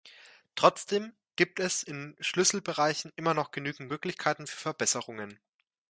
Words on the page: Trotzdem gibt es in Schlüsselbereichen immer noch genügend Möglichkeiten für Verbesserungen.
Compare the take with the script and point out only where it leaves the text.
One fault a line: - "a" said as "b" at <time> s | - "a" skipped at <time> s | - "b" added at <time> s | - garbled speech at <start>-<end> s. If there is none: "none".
none